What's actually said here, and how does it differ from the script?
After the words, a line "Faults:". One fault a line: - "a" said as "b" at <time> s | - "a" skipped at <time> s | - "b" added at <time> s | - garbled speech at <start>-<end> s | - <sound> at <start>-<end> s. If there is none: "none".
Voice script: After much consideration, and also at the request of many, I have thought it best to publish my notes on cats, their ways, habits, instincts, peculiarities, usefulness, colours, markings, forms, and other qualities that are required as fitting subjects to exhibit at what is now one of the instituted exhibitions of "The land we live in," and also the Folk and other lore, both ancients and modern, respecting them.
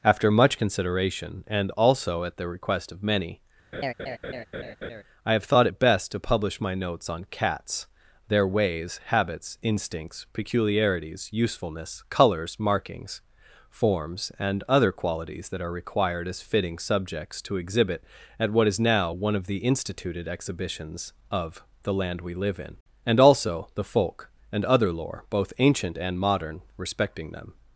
After much consideration, and also at the request of many, I have thought it best to publish my notes on cats, their ways, habits, instincts, peculiarities, usefulness, colours, markings, forms, and other qualities that are required as fitting subjects to exhibit at what is now one of the instituted exhibitions of "The land we live in," and also the Folk and other lore, both ancient and modern, respecting them.
Faults:
- laugh at 3.7-5.0 s
- "ancients" said as "ancient" at 25.6 s